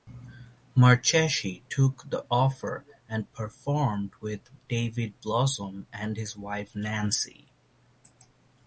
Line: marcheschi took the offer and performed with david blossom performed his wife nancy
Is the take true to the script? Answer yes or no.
no